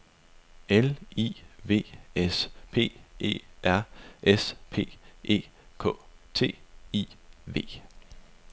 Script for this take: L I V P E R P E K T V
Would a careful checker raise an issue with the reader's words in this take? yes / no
yes